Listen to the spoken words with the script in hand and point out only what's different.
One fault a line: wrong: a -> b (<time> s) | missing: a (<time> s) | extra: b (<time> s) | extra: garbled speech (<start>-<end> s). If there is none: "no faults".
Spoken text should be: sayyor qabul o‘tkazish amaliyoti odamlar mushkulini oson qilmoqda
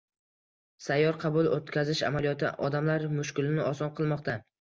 no faults